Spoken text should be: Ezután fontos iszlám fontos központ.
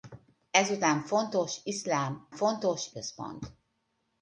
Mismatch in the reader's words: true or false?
false